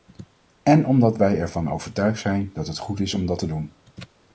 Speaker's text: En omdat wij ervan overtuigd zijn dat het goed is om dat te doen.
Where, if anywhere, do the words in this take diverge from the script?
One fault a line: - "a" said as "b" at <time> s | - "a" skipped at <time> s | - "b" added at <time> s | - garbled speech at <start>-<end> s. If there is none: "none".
none